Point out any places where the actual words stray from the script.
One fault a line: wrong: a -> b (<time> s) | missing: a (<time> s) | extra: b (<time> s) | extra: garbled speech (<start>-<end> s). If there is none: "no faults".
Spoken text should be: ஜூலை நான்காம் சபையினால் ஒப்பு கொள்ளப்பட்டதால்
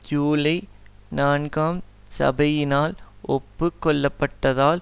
no faults